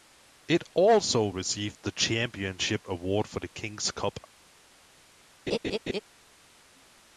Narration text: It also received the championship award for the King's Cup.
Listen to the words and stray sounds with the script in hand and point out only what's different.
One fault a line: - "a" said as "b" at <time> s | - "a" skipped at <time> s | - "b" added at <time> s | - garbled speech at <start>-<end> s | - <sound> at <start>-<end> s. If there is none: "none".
- laugh at 5.5-6.0 s